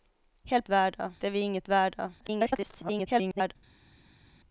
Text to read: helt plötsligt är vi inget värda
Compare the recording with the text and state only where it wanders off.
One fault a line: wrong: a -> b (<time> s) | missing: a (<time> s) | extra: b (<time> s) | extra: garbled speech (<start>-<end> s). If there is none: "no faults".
wrong: plötsligt -> värda (0.7 s)
extra: garbled speech (2.2-3.6 s)